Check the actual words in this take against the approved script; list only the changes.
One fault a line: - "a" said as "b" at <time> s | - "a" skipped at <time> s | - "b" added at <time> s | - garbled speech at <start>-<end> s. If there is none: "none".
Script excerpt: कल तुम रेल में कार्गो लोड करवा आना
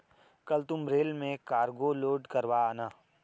none